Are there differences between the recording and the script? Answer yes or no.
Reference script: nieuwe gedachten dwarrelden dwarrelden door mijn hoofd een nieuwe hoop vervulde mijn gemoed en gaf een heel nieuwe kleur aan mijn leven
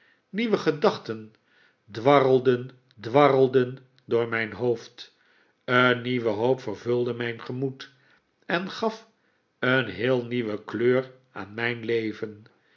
no